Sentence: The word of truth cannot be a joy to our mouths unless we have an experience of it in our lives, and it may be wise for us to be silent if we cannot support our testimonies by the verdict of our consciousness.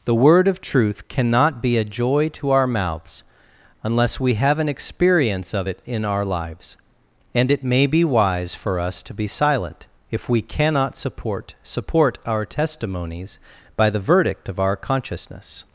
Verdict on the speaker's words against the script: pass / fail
fail